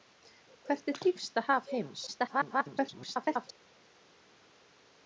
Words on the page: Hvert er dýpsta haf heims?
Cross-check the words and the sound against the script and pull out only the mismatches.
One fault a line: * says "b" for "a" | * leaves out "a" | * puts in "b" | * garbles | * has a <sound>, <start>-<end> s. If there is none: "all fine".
* garbles